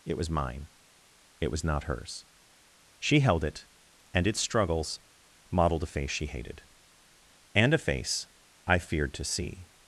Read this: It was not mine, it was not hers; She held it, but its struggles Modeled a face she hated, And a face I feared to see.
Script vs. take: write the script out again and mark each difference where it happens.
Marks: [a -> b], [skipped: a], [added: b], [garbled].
It was [skipped: not] mine, it was not hers; She held it, [but -> and] its struggles Modeled a face she hated, And a face I feared to see.